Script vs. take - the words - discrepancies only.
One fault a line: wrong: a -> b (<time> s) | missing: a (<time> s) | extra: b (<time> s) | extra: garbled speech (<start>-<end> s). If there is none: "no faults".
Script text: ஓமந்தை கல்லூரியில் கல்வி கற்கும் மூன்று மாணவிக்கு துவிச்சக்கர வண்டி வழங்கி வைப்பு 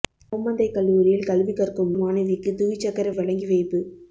missing: மூன்று (1.9 s)
missing: வண்டி (3.1 s)